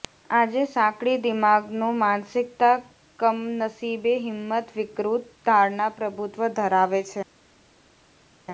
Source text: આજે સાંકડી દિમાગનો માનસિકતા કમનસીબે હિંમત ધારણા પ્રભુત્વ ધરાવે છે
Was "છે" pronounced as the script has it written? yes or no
yes